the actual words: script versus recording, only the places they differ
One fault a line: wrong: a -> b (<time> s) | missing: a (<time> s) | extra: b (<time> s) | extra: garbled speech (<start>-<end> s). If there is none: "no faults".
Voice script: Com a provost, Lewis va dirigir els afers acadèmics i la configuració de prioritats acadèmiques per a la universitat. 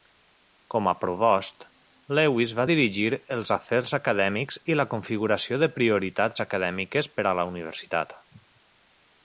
no faults